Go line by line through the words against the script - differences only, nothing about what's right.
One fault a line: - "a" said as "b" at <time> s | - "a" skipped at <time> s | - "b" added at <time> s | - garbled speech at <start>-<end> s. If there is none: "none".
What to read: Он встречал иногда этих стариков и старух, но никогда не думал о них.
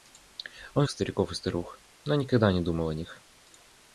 - "встречал иногда этих" skipped at 0.9 s